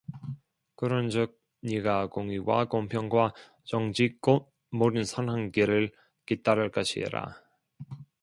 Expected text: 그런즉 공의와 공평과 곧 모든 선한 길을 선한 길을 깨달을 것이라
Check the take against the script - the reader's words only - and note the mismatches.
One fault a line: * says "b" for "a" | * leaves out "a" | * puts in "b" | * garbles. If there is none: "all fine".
* puts in "네가"
* puts in "정직"
* leaves out "선한 길을"